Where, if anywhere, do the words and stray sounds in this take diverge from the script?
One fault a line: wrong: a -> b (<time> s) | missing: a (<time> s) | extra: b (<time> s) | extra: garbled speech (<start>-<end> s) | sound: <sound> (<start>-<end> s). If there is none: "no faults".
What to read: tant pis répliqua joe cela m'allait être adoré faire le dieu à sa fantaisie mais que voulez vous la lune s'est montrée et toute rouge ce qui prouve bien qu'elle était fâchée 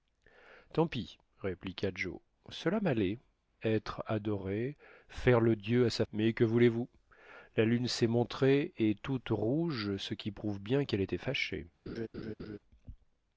missing: fantaisie (6.0 s)
sound: laugh (11.9-12.6 s)